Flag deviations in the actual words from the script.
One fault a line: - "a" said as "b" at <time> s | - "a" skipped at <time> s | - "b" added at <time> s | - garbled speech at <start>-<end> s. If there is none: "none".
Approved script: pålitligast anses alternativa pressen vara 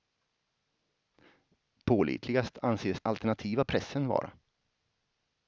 none